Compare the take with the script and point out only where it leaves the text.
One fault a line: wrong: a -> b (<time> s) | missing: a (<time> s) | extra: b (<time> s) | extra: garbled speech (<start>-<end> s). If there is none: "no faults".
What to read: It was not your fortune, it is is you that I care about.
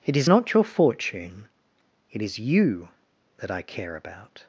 wrong: was -> is (0.2 s)
missing: is (2.4 s)